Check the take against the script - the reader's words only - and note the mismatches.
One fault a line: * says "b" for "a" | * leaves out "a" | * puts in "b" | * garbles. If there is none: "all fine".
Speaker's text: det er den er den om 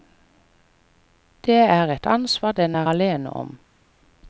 * puts in "et ansvar"
* says "alene" for "den"